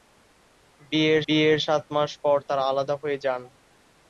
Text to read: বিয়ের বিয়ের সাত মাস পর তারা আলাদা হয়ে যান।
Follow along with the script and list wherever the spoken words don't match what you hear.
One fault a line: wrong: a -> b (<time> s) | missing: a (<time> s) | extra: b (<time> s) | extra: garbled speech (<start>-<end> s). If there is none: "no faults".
no faults